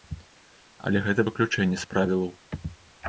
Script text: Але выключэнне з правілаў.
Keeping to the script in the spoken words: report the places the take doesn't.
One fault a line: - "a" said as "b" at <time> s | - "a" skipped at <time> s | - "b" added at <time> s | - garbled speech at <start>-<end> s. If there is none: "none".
- "гэта" added at 1.1 s